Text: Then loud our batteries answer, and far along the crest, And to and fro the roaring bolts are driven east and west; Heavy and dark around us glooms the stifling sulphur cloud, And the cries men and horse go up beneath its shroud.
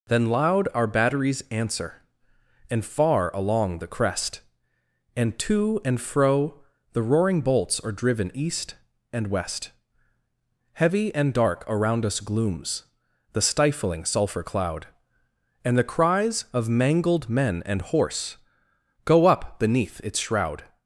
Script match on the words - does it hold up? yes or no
no